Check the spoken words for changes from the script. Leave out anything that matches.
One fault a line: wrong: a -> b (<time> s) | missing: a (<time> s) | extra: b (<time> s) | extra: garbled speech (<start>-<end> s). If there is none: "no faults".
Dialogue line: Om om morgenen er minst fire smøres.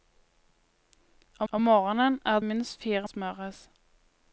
no faults